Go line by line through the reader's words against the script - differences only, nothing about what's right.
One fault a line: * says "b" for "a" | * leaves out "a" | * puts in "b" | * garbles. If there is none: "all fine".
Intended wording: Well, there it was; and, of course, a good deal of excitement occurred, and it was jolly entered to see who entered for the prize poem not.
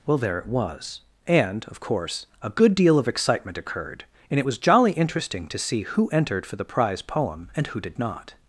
* says "interesting" for "entered"
* puts in "and who did"